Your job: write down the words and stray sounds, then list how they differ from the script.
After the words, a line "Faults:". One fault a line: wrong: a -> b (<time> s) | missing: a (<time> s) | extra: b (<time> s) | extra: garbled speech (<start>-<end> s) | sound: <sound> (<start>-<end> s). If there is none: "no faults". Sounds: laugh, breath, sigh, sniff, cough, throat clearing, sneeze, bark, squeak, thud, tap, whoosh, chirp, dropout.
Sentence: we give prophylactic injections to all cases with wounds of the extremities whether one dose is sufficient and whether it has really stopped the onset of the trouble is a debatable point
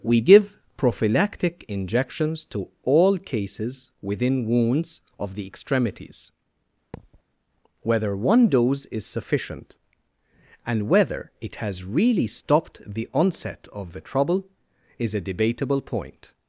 we give prophylactic injections to all cases within wounds of the extremities whether one dose is sufficient and whether it has really stopped the onset of the trouble is a debatable point
Faults:
wrong: with -> within (4.0 s)
sound: thud (6.9-7.2 s)